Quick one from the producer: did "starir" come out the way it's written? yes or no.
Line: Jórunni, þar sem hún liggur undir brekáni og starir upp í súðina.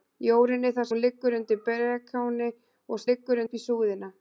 no